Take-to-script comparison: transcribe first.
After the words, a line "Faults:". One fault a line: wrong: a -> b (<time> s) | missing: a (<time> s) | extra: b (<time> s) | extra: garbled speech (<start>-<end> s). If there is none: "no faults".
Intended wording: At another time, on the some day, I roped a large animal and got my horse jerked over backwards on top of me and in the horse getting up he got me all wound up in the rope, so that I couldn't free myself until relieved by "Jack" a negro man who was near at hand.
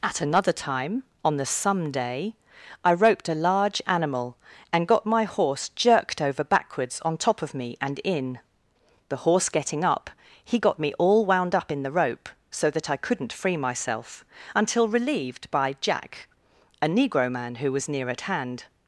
At another time, on the some day, I roped a large animal and got my horse jerked over backwards on top of me and in the horse getting up he got me all wound up in the rope, so that I couldn't free myself until relieved by "Jack" a negro man who was near at hand.
Faults:
no faults